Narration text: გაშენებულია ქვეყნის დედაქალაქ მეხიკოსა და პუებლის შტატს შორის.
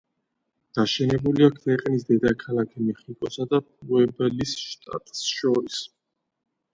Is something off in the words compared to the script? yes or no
no